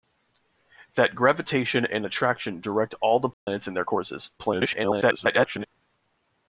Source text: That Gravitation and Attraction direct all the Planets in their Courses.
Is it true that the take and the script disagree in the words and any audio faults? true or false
true